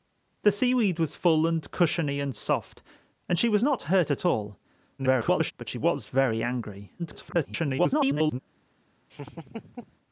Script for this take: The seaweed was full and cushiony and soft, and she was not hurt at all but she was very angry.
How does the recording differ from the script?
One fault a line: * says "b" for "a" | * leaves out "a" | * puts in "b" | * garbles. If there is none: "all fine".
* garbles
* garbles